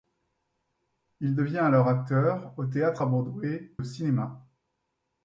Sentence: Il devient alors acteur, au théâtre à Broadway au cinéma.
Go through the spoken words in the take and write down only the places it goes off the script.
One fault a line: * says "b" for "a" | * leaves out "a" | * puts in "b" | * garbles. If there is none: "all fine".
all fine